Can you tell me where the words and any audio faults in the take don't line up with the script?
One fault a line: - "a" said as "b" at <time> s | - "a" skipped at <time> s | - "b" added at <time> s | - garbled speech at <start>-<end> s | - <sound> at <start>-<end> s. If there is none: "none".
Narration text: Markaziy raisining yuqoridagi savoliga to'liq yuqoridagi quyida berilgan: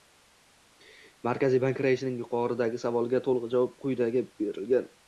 - "bank" added at 1.6 s
- "yuqoridagi" said as "javob" at 3.6 s